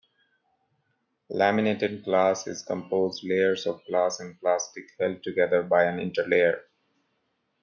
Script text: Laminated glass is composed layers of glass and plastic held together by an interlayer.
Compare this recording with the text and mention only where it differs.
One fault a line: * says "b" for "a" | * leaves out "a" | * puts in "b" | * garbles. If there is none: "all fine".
all fine